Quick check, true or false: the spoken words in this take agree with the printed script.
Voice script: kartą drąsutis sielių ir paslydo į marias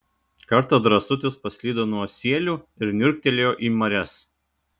false